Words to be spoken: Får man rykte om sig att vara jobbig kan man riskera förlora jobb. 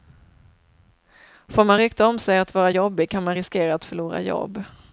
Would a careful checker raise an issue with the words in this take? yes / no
yes